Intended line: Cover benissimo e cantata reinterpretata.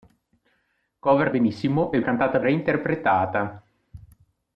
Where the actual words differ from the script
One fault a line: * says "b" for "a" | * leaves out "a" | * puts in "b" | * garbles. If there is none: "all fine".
all fine